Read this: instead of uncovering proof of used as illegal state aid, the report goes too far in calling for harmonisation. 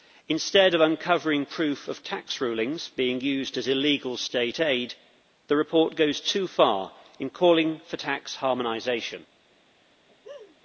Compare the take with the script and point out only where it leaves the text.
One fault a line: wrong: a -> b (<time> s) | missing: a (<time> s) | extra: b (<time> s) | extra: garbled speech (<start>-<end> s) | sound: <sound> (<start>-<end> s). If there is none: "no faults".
extra: tax rulings being (2.0 s)
extra: tax (8.0 s)
sound: laugh (10.1-10.6 s)